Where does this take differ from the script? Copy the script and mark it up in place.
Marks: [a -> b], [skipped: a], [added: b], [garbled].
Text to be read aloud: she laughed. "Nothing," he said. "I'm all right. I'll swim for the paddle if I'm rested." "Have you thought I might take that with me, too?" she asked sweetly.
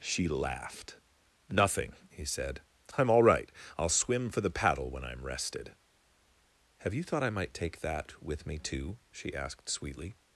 she laughed. "Nothing," he said. "I'm all right. I'll swim for the paddle [if -> when] I'm rested." "Have you thought I might take that with me, too?" she asked sweetly.